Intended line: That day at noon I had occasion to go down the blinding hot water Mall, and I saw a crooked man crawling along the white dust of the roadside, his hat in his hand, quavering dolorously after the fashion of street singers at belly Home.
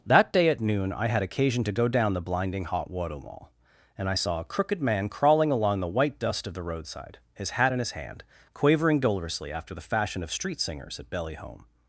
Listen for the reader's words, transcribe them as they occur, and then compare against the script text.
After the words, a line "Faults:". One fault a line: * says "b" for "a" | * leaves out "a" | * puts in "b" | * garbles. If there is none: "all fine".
That day at noon I had occasion to go down the blinding hot water Mall, and I saw a crooked man crawling along the white dust of the roadside, his hat in his hand, quavering dolorously after the fashion of street singers at belly Home.
Faults:
all fine